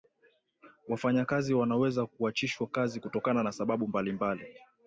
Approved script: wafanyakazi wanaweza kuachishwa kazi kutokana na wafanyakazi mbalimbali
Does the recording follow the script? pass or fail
fail